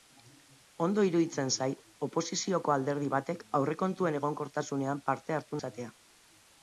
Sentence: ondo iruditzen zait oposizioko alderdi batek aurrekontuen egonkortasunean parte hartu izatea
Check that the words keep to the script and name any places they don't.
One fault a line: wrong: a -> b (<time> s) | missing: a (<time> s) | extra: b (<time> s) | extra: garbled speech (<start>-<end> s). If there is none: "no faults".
no faults